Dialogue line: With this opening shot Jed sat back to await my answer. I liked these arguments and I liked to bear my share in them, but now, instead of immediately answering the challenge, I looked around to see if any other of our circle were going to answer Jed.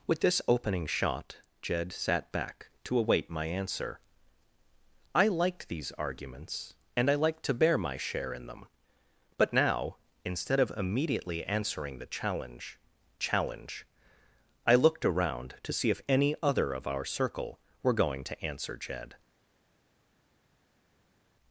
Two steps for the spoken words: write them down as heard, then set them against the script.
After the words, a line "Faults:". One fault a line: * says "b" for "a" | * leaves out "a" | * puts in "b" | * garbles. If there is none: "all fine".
With this opening shot Jed sat back to await my answer. I liked these arguments and I liked to bear my share in them, but now, instead of immediately answering the challenge challenge, I looked around to see if any other of our circle were going to answer Jed.
Faults:
* puts in "challenge"